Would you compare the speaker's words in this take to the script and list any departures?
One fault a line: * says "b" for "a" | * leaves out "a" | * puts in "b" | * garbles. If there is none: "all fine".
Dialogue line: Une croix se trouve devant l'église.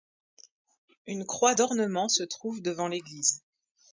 * puts in "d'ornement"